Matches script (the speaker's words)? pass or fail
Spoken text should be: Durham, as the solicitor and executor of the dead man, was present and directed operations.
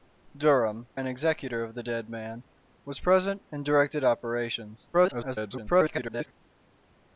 fail